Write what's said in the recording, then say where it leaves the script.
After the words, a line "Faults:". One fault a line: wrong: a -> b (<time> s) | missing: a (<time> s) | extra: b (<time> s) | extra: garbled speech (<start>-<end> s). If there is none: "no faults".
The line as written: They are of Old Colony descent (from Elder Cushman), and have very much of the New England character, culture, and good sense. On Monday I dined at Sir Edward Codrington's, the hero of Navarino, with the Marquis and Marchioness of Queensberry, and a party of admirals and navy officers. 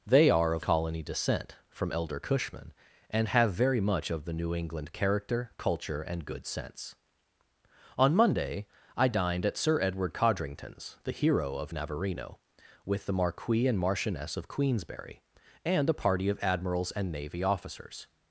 They are of Colony descent (from Elder Cushman), and have very much of the New England character, culture, and good sense. On Monday I dined at Sir Edward Codrington's, the hero of Navarino, with the Marquis and Marchioness of Queensberry, and a party of admirals and navy officers.
Faults:
missing: Old (0.7 s)